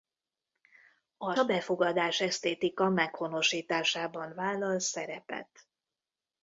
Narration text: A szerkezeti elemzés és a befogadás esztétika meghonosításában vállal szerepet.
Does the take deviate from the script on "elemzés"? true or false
true